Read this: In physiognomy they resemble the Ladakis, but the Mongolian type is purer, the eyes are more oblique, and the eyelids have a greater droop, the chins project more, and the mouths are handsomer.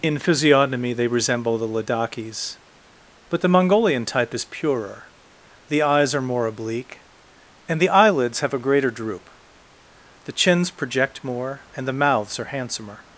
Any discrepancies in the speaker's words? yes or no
no